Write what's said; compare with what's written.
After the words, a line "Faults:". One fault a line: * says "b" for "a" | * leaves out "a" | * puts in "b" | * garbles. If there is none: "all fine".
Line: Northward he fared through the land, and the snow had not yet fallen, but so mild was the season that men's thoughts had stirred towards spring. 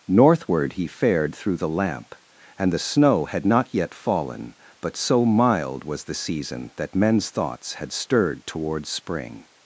Northward he fared through the lamp, and the snow had not yet fallen, but so mild was the season that men's thoughts had stirred towards spring.
Faults:
* says "lamp" for "land"